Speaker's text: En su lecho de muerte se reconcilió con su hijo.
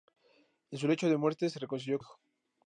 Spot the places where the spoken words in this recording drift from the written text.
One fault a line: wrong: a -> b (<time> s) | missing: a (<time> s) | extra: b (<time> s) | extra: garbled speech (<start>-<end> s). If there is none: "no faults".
missing: con su (2.0 s)